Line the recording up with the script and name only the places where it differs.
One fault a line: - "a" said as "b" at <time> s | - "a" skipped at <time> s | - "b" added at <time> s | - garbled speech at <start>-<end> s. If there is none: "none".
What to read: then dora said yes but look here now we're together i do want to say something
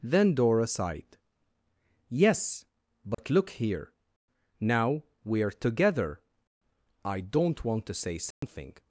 - "said" said as "sighed" at 0.7 s
- "do" said as "don't" at 7.2 s